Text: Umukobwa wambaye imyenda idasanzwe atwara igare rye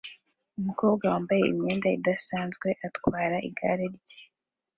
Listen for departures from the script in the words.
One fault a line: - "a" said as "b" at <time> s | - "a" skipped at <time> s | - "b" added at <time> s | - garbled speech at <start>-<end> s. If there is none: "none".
none